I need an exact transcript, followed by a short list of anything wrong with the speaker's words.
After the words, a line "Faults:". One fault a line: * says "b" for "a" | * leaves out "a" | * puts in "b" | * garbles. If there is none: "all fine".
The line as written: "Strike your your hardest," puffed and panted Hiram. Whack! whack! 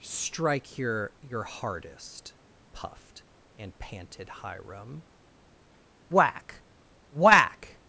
"Strike your your hardest," puffed and panted Hiram. Whack! whack!
Faults:
all fine